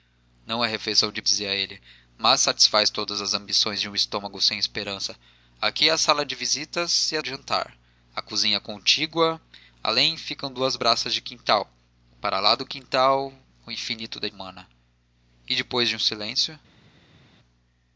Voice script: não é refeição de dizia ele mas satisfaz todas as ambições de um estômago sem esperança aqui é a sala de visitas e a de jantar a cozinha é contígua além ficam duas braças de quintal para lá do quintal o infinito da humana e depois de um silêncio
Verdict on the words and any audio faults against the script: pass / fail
pass